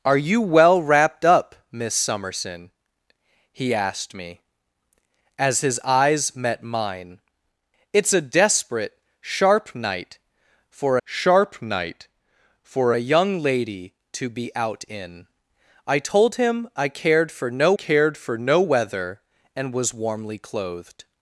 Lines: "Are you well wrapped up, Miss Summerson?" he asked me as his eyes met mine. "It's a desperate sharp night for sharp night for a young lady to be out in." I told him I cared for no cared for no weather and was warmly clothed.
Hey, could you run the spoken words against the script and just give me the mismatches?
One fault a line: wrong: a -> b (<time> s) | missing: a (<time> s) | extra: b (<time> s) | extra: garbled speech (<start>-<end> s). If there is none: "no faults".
no faults